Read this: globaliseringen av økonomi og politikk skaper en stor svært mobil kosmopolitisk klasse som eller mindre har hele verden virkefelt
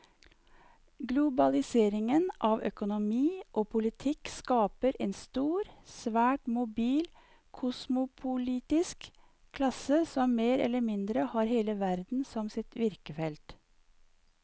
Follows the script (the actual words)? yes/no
no